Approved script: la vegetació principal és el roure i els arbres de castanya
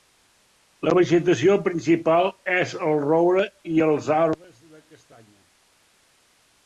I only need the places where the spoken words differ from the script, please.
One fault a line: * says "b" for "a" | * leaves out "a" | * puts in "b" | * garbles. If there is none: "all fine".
all fine